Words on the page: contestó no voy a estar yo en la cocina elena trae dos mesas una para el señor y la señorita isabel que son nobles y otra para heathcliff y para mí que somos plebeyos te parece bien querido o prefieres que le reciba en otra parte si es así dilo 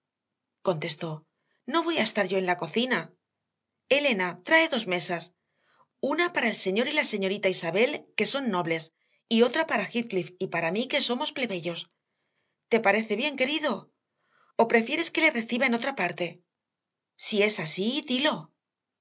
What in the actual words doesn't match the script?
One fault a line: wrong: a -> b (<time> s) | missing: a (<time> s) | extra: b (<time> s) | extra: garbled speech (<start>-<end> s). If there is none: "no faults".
no faults